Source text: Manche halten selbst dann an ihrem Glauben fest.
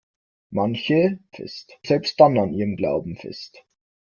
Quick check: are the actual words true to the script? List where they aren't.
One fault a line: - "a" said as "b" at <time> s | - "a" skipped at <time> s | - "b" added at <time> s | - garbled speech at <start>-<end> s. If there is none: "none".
- "halten" said as "fest" at 1.3 s